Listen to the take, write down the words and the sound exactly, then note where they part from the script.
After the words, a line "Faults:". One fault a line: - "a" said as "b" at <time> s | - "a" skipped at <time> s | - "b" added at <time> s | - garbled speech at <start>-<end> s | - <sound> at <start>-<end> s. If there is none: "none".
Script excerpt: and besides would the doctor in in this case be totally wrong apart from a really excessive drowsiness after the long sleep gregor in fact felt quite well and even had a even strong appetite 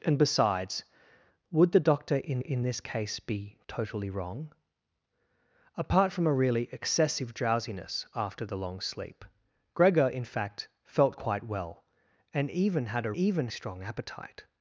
and besides would the doctor in in this case be totally wrong apart from a really excessive drowsiness after the long sleep gregor in fact felt quite well and even had a even strong appetite
Faults:
none